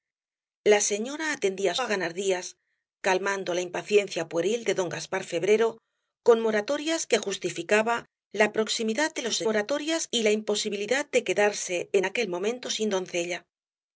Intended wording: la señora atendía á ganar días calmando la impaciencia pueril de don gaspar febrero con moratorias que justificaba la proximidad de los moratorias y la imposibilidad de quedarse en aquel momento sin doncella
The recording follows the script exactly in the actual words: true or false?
true